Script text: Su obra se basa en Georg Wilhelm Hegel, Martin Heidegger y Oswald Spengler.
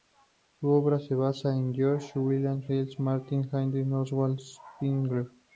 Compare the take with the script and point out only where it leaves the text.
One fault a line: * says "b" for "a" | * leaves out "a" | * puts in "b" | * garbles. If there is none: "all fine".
all fine